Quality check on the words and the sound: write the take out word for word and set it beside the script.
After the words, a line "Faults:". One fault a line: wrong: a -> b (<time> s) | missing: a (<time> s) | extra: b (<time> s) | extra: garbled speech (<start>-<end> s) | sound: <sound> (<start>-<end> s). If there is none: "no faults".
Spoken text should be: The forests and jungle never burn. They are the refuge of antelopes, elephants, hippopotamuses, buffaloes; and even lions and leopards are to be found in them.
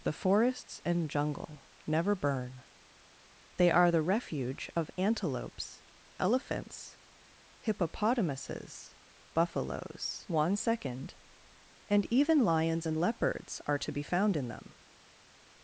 The forests and jungle never burn. They are the refuge of antelopes, elephants, hippopotamuses, buffaloes; one second and even lions and leopards are to be found in them.
Faults:
extra: one second (10.3 s)